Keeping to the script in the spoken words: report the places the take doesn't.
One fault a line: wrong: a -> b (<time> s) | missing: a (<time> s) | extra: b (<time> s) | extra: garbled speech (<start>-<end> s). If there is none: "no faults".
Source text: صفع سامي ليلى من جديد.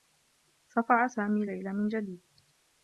no faults